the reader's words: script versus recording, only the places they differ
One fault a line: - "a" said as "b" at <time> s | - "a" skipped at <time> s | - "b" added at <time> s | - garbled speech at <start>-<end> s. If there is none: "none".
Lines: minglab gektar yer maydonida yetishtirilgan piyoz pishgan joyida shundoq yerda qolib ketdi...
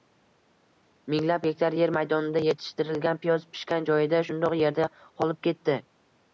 none